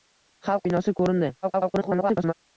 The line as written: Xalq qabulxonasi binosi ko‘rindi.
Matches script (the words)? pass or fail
fail